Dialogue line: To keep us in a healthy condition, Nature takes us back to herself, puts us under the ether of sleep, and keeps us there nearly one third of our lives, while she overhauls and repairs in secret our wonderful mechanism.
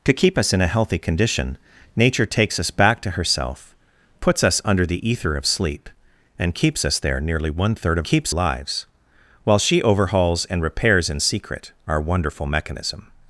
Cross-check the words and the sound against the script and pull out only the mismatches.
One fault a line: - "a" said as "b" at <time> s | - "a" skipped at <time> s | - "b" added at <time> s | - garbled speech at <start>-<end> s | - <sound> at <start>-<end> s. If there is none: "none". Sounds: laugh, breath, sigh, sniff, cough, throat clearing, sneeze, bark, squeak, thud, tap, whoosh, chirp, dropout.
- "our" said as "keeps" at 8.0 s